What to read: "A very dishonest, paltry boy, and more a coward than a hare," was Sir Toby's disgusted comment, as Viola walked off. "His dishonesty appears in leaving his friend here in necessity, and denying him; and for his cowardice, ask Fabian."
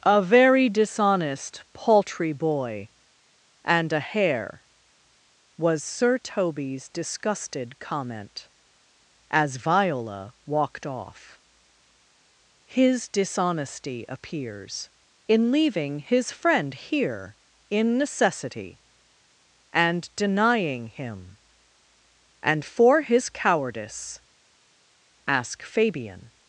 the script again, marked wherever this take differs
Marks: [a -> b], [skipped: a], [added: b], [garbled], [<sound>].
"A very dishonest, paltry boy, and [skipped: more a coward than] a hare," was Sir Toby's disgusted comment, as Viola walked off. "His dishonesty appears in leaving his friend here in necessity, and denying him; and for his cowardice, ask Fabian."